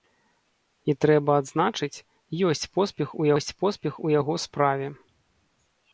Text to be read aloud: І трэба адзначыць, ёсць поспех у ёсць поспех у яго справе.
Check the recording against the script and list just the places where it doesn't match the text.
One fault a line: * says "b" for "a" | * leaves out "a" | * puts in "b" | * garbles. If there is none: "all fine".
all fine